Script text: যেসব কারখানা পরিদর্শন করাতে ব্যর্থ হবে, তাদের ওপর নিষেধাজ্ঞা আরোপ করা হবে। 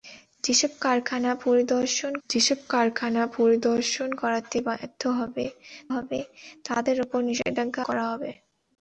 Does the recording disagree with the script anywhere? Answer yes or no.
yes